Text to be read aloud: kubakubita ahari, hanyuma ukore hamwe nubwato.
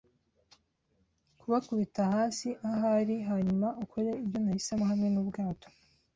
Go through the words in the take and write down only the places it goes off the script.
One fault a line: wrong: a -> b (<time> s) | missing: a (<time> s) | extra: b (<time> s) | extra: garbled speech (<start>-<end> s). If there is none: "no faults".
extra: hasi (2.1 s)
extra: ibyo nahisemo (4.2 s)